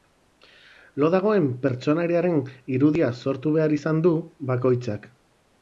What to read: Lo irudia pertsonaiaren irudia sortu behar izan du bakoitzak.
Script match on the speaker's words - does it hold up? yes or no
no